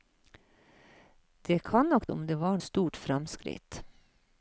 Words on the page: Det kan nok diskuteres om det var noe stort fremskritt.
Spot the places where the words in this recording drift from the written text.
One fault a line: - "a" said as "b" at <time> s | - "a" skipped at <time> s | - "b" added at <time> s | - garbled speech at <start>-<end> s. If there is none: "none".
- "diskuteres" skipped at 2.1 s
- "noe" skipped at 2.6 s